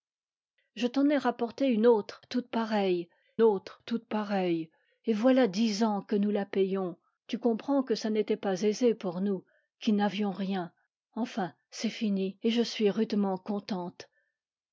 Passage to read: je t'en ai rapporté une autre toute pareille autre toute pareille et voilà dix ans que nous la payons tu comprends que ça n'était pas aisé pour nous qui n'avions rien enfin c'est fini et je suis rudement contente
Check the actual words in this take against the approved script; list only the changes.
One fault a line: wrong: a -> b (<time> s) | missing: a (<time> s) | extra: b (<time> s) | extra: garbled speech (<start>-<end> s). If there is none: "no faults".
no faults